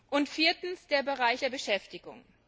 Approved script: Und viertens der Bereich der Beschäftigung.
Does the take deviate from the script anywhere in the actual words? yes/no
no